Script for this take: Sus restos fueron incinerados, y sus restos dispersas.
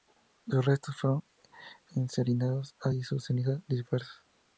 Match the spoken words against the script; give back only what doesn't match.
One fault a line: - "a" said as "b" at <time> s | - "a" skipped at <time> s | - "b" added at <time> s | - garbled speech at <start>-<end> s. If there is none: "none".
- "restos" said as "cenizas" at 3.3 s